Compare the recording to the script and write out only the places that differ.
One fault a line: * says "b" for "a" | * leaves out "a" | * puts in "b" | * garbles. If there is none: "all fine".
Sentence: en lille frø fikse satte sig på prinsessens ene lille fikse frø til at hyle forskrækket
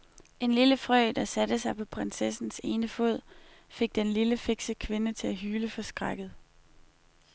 * says "der" for "fikse"
* puts in "fod fik den"
* says "kvinde" for "frø"